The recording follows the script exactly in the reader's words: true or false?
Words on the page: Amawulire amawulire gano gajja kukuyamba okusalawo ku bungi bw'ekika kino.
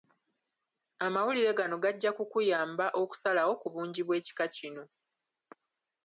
false